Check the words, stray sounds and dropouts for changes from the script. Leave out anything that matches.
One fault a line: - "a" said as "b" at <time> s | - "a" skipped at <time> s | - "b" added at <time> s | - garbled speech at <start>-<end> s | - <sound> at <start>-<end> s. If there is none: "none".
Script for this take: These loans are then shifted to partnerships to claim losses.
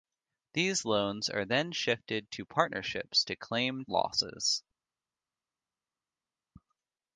none